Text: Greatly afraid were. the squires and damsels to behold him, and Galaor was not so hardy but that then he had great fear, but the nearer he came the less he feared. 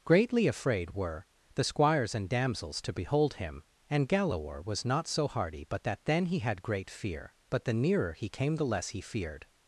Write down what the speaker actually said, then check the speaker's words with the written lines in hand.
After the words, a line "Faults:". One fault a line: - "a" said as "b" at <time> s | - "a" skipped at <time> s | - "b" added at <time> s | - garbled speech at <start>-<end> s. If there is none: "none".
Greatly afraid were. the squires and damsels to behold him, and Galaor was not so hardy but that then he had great fear, but the nearer he came the less he feared.
Faults:
none